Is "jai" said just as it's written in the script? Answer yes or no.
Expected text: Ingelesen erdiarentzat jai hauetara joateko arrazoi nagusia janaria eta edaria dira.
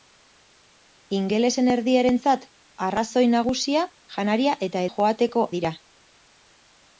no